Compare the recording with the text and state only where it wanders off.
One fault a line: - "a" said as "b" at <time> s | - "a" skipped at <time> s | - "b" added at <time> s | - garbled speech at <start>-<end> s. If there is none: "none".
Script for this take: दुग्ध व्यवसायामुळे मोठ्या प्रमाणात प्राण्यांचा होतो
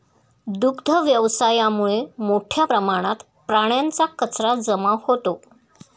- "कचरा जमा" added at 4.2 s